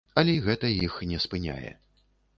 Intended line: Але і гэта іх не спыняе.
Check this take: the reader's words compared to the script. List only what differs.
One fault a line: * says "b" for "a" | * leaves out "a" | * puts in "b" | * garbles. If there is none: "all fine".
all fine